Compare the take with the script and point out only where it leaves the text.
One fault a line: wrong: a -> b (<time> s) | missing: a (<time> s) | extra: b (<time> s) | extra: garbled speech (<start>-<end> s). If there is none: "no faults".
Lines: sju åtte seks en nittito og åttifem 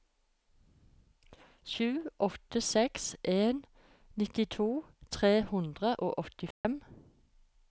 extra: tre hundre (5.2 s)